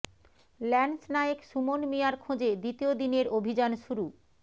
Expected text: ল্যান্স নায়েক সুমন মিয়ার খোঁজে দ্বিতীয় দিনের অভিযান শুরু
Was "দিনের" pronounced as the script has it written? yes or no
yes